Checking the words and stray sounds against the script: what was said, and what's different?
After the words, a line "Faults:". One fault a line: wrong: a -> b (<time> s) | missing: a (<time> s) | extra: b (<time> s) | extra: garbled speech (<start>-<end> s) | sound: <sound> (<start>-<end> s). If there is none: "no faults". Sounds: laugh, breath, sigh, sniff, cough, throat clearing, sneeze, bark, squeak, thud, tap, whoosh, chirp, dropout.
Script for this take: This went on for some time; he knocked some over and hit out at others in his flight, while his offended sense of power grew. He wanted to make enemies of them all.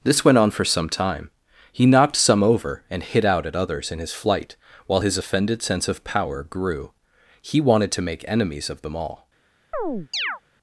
This went on for some time; he knocked some over and hit out at others in his flight, while his offended sense of power grew. He wanted to make enemies of them all.
Faults:
sound: chirp (9.7-10.4 s)